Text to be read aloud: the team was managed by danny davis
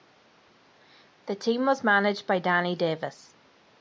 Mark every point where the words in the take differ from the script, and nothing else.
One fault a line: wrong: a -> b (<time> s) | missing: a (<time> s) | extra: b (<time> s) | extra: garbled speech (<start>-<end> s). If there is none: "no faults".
no faults